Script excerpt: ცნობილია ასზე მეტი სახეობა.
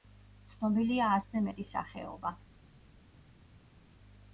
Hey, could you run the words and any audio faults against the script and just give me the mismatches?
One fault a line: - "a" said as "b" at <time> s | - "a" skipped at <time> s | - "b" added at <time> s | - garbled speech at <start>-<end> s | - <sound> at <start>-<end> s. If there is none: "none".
none